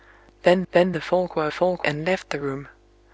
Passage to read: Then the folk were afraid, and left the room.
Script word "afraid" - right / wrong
wrong